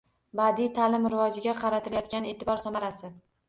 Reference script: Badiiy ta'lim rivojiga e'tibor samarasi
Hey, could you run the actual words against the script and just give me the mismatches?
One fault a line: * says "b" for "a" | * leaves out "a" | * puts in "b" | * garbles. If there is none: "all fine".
* puts in "qaratilayotgan"